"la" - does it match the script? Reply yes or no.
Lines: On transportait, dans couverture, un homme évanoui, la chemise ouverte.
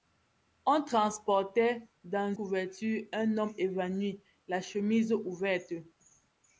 yes